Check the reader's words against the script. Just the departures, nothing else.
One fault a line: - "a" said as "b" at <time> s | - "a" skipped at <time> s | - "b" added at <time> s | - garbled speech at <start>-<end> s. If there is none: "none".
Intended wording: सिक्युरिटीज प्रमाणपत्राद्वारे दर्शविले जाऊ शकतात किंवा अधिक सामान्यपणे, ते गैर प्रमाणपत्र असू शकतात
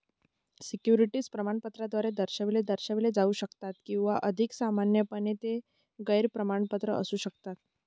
- "दर्शविले" added at 2.6 s